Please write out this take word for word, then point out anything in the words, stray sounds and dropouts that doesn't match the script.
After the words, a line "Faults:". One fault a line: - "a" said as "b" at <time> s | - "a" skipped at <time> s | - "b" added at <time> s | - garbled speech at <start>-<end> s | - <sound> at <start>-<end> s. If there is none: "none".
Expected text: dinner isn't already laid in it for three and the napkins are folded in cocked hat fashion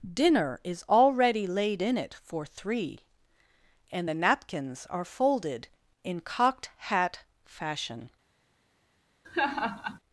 dinner is already laid in it for three and the napkins are folded in cocked hat fashion
Faults:
- "isn't" said as "is" at 0.6 s
- laugh at 9.2-10.0 s